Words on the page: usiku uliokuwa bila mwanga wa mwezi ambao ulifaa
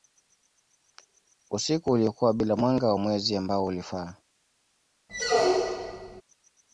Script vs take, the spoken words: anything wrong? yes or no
no